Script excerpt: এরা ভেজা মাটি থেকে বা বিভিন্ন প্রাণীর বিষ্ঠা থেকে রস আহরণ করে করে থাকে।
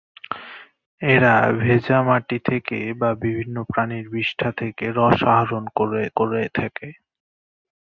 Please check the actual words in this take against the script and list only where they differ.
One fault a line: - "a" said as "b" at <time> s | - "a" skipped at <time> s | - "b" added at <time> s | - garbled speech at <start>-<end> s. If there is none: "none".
none